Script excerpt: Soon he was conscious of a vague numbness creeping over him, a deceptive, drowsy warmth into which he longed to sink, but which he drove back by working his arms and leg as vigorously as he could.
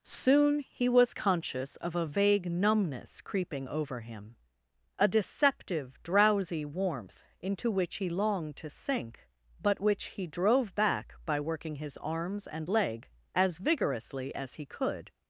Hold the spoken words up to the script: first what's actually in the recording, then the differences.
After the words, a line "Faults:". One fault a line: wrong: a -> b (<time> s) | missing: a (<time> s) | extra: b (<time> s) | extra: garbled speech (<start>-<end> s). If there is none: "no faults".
Soon he was conscious of a vague numbness creeping over him, a deceptive, drowsy warmth into which he longed to sink, but which he drove back by working his arms and leg as vigorously as he could.
Faults:
no faults